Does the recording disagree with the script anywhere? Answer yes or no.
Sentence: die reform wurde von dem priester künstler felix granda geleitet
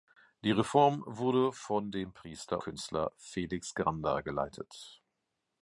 no